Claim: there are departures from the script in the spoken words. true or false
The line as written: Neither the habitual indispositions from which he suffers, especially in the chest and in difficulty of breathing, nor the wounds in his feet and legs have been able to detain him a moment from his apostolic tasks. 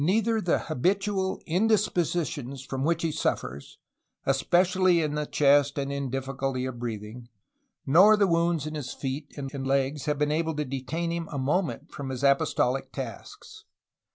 true